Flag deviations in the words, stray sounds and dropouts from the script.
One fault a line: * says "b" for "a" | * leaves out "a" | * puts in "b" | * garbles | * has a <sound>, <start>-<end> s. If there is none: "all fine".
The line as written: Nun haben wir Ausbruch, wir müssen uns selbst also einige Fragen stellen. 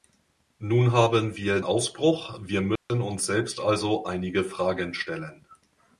* has a dropout, 2.8-2.9 s